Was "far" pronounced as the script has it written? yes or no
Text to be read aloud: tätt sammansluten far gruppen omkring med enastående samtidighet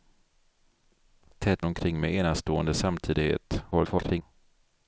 no